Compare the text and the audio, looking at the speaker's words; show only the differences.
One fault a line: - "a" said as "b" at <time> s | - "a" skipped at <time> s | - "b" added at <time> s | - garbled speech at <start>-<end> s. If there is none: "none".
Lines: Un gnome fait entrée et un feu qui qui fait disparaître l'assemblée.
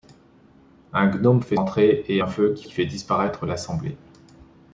none